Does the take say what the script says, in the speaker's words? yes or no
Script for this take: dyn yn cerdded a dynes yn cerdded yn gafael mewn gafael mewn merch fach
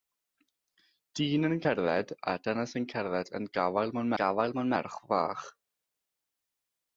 yes